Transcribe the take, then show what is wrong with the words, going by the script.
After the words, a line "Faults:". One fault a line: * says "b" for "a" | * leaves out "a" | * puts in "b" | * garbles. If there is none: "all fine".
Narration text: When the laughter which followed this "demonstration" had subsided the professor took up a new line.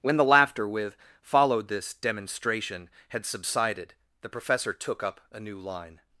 When the laughter with followed this "demonstration" had subsided the professor took up a new line.
Faults:
* says "with" for "which"